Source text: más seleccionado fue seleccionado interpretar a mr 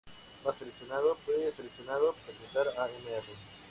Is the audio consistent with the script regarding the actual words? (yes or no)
yes